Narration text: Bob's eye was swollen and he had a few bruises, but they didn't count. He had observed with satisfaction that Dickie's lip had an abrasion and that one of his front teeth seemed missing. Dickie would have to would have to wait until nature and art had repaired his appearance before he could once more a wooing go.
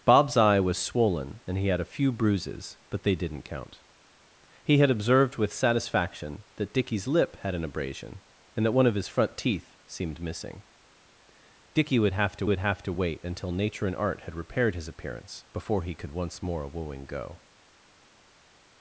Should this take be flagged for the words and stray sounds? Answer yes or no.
no